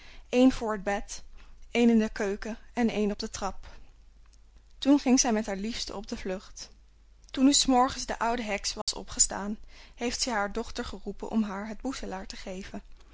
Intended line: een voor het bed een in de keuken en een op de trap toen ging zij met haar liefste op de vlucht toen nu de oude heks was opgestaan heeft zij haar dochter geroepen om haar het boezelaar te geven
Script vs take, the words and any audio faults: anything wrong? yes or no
yes